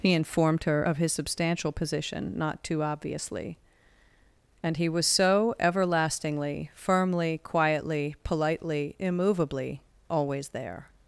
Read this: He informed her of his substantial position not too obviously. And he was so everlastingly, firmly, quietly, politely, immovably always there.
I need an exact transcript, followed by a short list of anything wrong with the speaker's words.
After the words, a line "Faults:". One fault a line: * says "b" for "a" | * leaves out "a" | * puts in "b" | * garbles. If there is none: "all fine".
He informed her of his substantial position not too obviously. And he was so everlastingly, firmly, quietly, politely, immovably always there.
Faults:
all fine